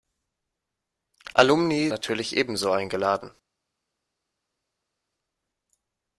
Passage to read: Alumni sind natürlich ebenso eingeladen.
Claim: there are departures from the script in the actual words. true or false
true